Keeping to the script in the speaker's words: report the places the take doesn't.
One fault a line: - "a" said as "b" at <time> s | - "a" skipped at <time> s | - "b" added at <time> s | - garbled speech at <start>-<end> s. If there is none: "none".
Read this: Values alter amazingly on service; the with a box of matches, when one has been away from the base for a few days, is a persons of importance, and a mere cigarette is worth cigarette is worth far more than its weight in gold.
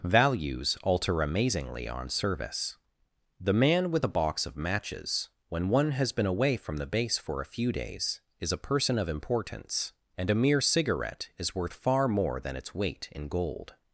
- "man" added at 3.5 s
- "persons" said as "person" at 8.6 s
- "cigarette is worth" skipped at 11.7 s